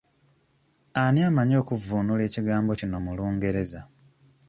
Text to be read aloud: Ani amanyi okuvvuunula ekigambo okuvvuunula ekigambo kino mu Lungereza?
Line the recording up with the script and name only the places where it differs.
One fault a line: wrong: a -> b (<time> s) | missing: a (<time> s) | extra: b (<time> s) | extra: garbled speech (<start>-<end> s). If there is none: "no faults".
missing: okuvvuunula ekigambo (2.7 s)